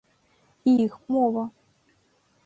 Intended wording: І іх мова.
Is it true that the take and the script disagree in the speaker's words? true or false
false